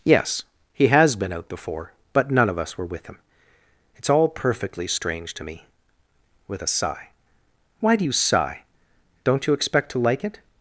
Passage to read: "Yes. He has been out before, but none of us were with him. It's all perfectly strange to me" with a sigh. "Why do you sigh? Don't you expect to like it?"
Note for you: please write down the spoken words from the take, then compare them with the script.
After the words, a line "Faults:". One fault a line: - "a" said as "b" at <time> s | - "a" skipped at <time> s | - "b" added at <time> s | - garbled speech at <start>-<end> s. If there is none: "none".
"Yes. He has been out before, but none of us were with him. It's all perfectly strange to me" with a sigh. "Why do you sigh? Don't you expect to like it?"
Faults:
none